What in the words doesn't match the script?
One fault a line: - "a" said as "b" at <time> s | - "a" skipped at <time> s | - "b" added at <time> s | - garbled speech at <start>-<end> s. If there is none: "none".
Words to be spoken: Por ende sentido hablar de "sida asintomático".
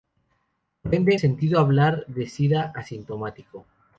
none